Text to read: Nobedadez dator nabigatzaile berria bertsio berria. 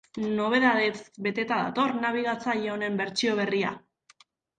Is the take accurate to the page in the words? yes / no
no